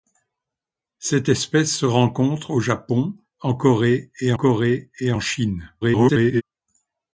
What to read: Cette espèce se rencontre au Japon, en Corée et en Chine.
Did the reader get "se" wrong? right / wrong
right